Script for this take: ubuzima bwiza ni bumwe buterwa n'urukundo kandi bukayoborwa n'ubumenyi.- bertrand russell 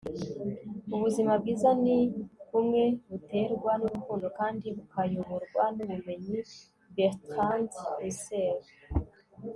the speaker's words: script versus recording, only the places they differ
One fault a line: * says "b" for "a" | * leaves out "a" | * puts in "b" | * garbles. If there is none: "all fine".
all fine